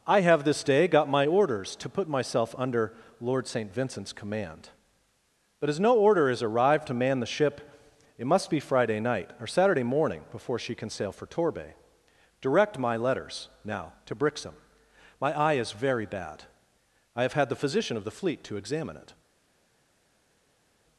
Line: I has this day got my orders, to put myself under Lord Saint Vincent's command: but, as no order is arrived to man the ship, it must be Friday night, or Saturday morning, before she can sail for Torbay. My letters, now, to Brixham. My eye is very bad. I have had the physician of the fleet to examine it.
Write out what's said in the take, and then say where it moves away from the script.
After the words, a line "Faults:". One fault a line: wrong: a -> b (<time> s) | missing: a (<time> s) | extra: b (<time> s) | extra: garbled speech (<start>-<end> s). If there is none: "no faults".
I have this day got my orders, to put myself under Lord Saint Vincent's command: but, as no order is arrived to man the ship, it must be Friday night, or Saturday morning, before she can sail for Torbay. Direct my letters, now, to Brixham. My eye is very bad. I have had the physician of the fleet to examine it.
Faults:
wrong: has -> have (0.2 s)
extra: Direct (12.4 s)